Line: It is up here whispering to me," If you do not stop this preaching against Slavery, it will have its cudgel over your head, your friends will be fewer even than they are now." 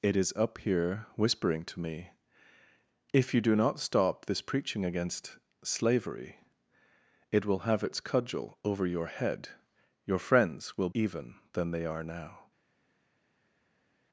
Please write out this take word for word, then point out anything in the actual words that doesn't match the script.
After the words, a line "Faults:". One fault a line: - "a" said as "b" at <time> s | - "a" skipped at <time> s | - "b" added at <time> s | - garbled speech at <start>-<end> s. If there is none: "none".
It is up here whispering to me," If you do not stop this preaching against Slavery, it will have its cudgel over your head, your friends will even than they are now."
Faults:
- "be fewer" skipped at 10.9 s